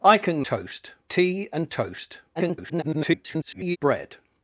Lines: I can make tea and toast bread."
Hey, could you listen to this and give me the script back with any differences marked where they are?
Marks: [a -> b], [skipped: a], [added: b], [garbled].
I can [make -> toast] tea and toast [garbled] bread."